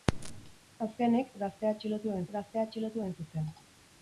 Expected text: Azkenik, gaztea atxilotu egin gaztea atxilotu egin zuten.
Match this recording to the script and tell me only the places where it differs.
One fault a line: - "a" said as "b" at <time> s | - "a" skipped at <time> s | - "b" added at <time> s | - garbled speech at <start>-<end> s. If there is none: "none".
none